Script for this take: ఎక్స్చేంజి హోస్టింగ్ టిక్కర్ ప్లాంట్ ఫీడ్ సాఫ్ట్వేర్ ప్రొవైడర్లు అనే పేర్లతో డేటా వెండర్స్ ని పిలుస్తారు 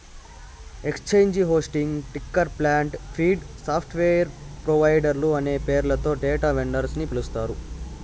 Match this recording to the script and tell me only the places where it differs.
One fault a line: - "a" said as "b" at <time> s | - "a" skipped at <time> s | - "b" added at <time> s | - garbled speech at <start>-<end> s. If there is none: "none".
none